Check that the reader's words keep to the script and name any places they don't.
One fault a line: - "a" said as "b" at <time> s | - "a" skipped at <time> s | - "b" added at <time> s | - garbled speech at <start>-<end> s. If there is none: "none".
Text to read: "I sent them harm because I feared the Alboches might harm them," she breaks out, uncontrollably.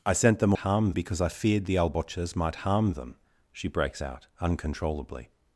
none